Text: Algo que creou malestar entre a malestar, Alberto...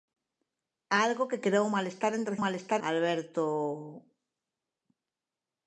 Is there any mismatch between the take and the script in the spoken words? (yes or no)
no